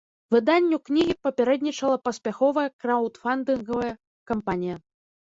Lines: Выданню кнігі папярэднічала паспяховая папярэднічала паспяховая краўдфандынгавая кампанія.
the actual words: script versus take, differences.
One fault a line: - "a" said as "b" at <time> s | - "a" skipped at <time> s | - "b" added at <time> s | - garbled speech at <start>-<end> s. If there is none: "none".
- "папярэднічала паспяховая" skipped at 2.6 s